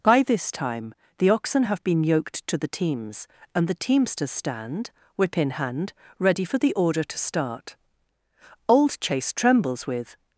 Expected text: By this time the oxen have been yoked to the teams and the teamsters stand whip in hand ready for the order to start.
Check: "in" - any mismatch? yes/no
no